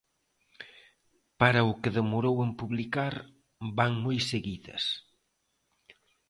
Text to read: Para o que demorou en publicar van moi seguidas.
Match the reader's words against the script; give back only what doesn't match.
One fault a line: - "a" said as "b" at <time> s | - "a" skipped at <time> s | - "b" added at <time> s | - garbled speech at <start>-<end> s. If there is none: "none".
none